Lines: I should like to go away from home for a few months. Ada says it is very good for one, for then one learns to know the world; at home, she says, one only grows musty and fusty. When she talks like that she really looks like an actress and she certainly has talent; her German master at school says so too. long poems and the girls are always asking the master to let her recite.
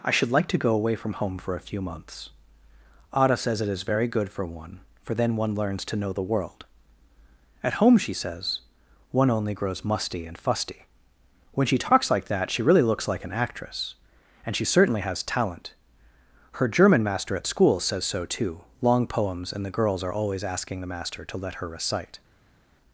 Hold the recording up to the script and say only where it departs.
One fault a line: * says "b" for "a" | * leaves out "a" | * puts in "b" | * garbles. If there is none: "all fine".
all fine